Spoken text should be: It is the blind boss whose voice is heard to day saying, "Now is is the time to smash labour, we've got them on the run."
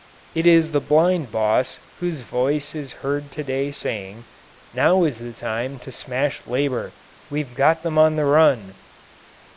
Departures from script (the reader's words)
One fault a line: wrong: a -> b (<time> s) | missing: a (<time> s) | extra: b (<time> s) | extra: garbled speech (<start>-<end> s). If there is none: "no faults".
missing: is (5.2 s)